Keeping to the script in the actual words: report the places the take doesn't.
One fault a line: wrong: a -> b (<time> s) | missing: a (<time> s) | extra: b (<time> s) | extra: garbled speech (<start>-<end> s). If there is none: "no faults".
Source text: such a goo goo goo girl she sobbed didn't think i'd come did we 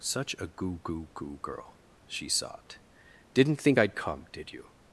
wrong: we -> you (4.5 s)